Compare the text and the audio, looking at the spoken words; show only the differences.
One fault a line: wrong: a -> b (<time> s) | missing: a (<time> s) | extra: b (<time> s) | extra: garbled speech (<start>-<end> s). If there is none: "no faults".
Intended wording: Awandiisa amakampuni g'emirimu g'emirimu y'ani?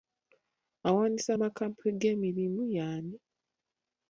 missing: g'emirimu (2.6 s)